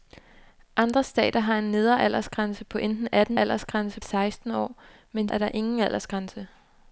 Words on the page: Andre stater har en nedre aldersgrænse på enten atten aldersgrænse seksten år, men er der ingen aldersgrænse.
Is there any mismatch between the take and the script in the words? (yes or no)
no